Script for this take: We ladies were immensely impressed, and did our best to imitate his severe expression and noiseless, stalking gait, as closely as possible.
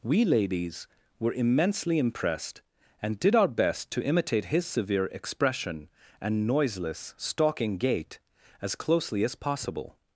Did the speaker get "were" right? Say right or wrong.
right